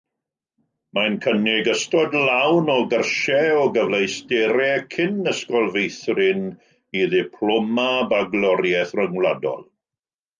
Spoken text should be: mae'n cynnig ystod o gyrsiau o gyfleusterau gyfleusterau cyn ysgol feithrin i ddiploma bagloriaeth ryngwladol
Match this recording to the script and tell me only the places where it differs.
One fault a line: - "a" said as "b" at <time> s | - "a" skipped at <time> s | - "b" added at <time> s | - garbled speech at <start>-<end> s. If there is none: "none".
- "lawn" added at 2.3 s
- "gyfleusterau" skipped at 4.8 s